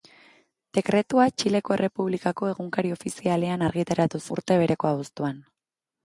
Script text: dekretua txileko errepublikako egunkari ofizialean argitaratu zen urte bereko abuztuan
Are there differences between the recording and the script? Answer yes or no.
yes